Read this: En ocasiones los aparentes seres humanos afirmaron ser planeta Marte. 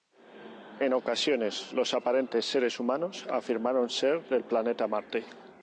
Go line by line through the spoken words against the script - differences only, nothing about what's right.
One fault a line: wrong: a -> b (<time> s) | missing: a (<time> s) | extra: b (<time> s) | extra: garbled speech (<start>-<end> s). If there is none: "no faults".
extra: del (4.3 s)